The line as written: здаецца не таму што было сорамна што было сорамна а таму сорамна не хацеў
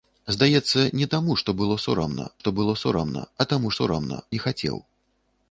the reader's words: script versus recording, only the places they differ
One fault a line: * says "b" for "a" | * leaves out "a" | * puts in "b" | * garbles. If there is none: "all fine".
all fine